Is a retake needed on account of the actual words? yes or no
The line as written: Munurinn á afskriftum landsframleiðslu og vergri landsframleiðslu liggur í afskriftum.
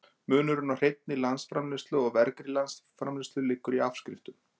yes